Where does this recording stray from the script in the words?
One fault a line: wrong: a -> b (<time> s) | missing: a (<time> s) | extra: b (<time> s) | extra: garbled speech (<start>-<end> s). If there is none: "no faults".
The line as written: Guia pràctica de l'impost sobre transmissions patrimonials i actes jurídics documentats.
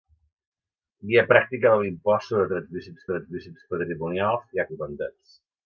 extra: transmissions (3.1 s)
missing: actes jurídics (4.7 s)